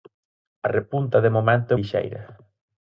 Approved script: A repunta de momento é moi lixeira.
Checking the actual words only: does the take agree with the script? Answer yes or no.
no